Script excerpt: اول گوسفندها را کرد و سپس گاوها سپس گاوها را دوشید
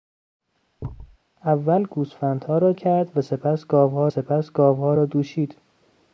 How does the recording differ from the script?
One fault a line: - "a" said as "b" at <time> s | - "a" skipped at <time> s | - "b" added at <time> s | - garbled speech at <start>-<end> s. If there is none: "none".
none